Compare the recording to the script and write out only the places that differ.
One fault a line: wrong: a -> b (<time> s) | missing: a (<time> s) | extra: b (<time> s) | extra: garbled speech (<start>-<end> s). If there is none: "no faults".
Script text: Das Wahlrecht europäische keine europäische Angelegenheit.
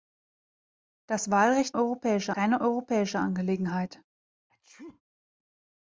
no faults